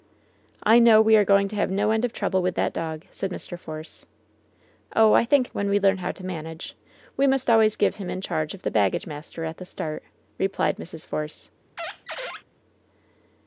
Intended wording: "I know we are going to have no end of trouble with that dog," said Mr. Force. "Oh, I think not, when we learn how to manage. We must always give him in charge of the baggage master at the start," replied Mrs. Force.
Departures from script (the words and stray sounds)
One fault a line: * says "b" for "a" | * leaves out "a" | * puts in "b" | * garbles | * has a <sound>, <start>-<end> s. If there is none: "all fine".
* leaves out "not"
* has a squeak, 11.8-12.4 s